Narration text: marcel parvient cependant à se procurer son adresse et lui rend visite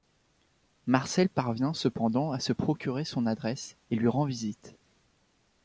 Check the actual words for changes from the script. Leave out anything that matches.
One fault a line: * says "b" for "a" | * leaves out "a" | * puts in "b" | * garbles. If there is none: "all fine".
all fine